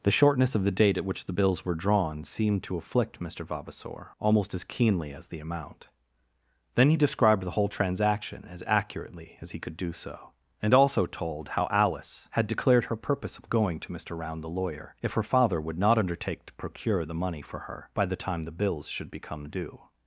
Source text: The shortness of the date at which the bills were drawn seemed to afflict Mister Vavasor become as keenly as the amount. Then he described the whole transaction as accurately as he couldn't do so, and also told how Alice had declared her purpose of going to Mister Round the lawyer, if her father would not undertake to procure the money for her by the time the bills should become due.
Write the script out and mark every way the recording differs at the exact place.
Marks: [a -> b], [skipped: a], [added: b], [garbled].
The shortness of the date at which the bills were drawn seemed to afflict Mister Vavasor [become -> almost] as keenly as the amount. Then he described the whole transaction as accurately as he [couldn't -> could] do so, and also told how Alice had declared her purpose of going to Mister Round the lawyer, if her father would not undertake to procure the money for her by the time the bills should become due.